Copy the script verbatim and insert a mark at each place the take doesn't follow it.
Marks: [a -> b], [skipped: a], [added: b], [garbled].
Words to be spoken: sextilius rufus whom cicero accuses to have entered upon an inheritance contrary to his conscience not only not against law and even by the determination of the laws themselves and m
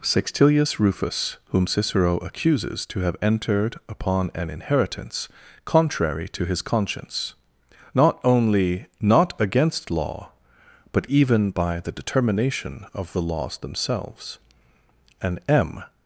sextilius rufus whom cicero accuses to have entered upon an inheritance contrary to his conscience not only not against law [and -> but] even by the determination of the laws themselves and m